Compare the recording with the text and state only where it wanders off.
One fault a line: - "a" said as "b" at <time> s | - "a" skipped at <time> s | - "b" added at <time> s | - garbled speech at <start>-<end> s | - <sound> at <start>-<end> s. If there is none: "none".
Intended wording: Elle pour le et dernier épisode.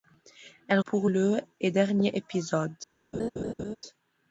- laugh at 3.1-3.8 s